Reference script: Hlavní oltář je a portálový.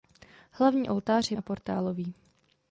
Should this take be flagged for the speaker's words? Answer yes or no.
no